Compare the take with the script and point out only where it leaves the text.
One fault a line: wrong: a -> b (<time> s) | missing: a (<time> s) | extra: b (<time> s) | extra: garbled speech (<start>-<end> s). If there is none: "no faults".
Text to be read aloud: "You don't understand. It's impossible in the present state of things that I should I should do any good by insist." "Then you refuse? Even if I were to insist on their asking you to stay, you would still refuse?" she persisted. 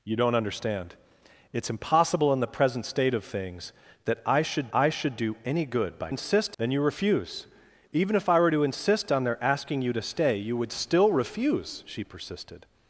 no faults